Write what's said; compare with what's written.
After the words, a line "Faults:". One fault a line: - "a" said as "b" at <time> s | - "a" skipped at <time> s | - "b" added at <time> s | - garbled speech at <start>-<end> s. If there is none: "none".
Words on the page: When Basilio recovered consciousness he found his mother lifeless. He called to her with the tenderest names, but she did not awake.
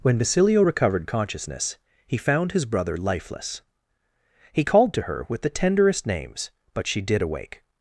When Basilio recovered consciousness he found his brother lifeless. He called to her with the tenderest names, but she did awake.
Faults:
- "mother" said as "brother" at 2.6 s
- "not" skipped at 7.2 s